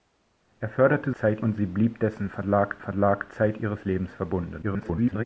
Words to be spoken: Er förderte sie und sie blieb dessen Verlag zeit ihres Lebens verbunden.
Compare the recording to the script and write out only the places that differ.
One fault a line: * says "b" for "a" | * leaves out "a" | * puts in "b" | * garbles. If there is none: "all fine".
* says "zeit" for "sie"
* puts in "Verlag"
* garbles